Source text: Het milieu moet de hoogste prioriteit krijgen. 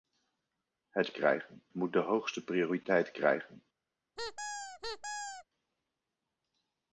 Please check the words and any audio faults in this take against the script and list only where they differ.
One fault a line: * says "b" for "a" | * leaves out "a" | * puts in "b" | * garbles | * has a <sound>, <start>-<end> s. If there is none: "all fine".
* says "krijgen" for "milieu"
* has a squeak, 4.2-5.4 s